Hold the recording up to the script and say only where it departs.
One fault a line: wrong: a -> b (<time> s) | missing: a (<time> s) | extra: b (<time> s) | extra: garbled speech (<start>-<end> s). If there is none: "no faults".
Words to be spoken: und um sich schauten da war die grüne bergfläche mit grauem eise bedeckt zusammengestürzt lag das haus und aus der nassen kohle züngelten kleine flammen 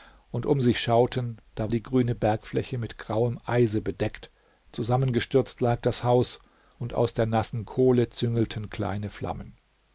missing: war (1.7 s)